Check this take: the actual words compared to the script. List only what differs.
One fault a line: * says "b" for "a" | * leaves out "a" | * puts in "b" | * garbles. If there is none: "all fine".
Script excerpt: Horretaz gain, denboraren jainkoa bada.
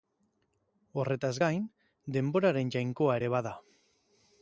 * puts in "ere"